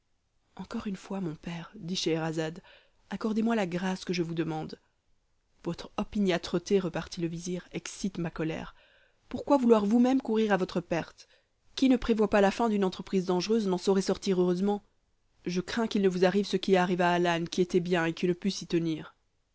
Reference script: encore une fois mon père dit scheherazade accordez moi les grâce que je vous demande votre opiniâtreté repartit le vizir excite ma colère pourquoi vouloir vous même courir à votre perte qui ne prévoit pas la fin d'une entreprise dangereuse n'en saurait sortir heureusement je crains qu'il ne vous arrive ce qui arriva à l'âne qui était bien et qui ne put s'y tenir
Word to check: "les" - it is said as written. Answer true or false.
false